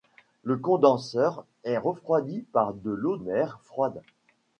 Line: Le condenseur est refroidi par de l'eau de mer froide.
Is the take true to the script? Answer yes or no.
no